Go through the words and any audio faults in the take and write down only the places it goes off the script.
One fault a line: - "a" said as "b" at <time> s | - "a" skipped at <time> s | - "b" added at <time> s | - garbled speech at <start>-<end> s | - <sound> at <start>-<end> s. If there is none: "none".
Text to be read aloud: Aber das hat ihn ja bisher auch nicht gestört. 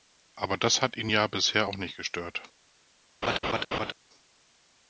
- laugh at 3.2-3.9 s